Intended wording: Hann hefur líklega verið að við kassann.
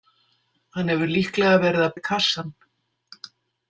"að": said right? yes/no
yes